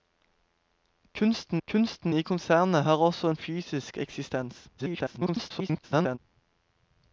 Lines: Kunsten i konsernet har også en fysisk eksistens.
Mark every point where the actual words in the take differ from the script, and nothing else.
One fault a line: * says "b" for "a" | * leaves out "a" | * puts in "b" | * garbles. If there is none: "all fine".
* puts in "kunsten"
* garbles